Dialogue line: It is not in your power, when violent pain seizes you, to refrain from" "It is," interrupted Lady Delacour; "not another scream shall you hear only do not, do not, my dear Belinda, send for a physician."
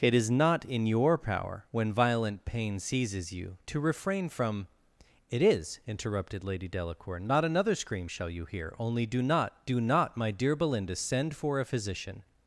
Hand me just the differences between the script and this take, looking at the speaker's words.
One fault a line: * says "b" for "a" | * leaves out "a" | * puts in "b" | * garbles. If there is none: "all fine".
all fine